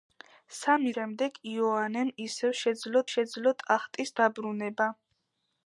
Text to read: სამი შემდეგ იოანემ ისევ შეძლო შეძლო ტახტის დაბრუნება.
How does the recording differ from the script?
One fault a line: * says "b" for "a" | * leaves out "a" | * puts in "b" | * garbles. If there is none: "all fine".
all fine